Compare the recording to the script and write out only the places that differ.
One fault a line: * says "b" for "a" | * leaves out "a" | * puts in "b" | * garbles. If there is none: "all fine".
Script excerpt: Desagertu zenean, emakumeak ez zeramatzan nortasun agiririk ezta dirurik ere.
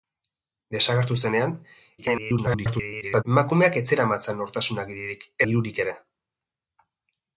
* garbles
* leaves out "ezta"